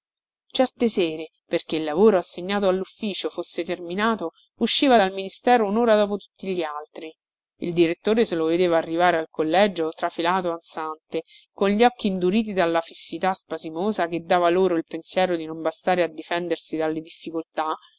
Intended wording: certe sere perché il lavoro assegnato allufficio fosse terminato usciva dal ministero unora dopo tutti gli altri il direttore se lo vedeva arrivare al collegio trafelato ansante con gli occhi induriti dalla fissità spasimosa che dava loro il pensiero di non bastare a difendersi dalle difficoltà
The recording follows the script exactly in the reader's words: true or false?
true